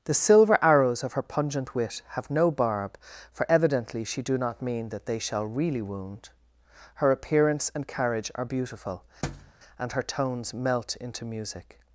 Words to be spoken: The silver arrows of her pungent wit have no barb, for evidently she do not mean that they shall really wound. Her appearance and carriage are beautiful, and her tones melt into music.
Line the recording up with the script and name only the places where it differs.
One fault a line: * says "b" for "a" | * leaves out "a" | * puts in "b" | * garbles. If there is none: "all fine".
all fine